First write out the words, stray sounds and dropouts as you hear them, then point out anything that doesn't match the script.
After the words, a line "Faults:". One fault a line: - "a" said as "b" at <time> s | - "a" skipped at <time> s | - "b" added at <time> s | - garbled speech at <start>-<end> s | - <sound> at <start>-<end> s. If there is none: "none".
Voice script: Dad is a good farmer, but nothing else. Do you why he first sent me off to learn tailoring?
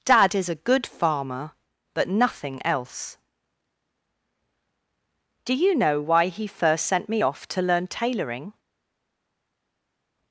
Dad is a good farmer, but nothing else. Do you know why he first sent me off to learn tailoring?
Faults:
- "know" added at 5.8 s